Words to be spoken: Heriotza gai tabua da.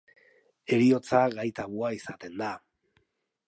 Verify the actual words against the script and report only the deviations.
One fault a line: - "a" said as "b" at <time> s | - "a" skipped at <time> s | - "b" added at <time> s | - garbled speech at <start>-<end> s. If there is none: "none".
- "izaten" added at 2.0 s